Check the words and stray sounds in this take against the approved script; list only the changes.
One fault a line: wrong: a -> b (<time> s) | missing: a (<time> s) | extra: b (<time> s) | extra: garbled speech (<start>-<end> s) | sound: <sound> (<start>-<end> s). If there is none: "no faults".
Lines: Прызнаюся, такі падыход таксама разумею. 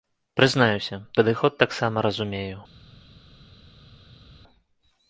missing: такі (0.9 s)